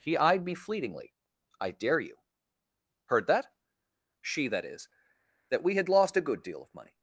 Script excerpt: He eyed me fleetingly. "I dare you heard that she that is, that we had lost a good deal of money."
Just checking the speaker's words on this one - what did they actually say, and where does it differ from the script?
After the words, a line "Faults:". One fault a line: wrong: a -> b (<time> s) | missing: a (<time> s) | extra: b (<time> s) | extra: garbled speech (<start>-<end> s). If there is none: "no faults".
He eyed me fleetingly. "I dare you heard that she that is, that we had lost a good deal of money."
Faults:
no faults